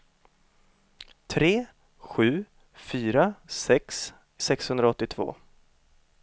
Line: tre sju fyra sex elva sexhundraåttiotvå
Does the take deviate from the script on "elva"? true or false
true